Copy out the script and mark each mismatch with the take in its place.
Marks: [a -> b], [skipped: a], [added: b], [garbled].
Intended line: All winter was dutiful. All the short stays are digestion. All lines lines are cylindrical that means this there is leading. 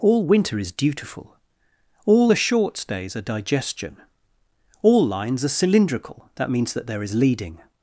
All winter [was -> is] dutiful. All the short stays are digestion. All lines [skipped: lines] are cylindrical that means [this -> that] there is leading.